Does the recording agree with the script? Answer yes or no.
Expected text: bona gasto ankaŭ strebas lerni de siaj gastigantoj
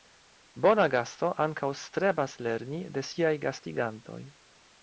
yes